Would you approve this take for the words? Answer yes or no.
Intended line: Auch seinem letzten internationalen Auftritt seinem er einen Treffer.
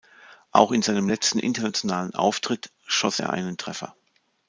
no